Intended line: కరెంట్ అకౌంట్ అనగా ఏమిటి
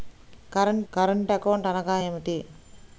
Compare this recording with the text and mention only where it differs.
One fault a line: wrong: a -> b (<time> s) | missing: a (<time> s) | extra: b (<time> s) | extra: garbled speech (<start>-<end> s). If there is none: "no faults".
extra: కరెంట్ (0.9 s)